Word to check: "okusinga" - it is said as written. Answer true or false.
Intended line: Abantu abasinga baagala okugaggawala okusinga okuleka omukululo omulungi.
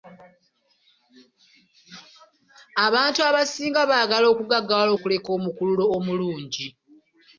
false